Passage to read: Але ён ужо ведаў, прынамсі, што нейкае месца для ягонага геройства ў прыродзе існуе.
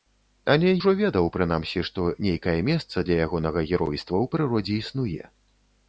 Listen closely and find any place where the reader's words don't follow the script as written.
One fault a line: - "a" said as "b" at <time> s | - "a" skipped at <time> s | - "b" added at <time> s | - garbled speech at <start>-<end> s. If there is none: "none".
- "ён" skipped at 0.7 s